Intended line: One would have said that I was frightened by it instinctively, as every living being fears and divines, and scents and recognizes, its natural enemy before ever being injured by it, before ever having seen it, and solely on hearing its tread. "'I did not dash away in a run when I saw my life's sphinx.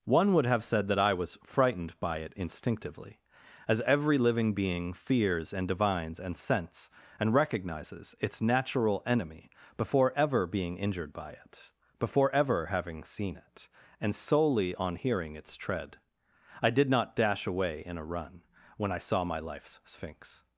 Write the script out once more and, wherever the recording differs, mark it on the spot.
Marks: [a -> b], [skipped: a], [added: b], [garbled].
One would have said that I was frightened by it instinctively, as every living being fears and divines, and scents and recognizes, its natural enemy before ever being injured by it, before ever having seen it, and solely on hearing its tread. "'I did not dash away in a run when I saw my life's sphinx.